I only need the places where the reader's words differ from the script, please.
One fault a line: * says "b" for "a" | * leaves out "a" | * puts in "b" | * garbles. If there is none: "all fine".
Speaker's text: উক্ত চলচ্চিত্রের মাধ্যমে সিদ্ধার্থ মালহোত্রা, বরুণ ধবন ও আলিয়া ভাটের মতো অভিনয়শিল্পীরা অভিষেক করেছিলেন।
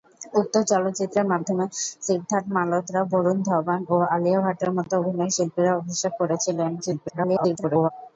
* garbles